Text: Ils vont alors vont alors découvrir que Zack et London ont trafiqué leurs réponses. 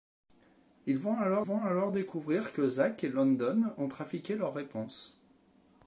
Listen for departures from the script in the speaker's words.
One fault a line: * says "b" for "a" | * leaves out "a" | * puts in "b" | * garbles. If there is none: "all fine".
all fine